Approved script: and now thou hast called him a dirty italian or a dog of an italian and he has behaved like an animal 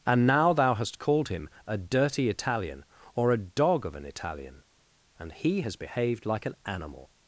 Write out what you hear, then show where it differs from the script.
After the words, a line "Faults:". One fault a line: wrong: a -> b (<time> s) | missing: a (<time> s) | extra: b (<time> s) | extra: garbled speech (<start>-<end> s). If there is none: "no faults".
and now thou hast called him a dirty italian or a dog of an italian and he has behaved like an animal
Faults:
no faults